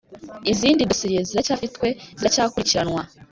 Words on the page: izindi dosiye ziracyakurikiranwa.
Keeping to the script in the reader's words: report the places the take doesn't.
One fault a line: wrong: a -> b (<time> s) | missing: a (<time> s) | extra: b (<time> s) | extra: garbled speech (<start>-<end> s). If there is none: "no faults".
extra: ziracyafitwe (1.3 s)